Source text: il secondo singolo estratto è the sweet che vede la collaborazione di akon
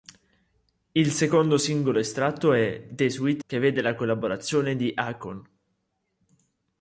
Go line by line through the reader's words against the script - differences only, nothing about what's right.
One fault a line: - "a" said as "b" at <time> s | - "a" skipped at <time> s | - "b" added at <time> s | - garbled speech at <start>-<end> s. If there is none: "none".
none